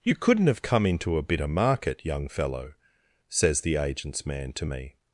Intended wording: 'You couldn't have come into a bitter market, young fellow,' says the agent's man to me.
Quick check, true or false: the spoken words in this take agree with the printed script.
true